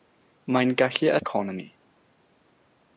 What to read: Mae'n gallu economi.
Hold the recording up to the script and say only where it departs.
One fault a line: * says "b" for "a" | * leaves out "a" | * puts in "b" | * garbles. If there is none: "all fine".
all fine